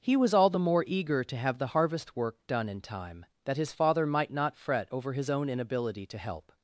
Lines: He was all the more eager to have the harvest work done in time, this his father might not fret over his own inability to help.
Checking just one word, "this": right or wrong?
wrong